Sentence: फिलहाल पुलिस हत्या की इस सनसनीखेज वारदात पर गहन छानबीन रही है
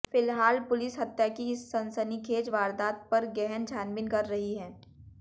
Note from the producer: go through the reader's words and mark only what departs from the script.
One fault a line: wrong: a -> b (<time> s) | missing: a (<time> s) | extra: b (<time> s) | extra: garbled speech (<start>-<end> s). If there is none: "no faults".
extra: कर (4.1 s)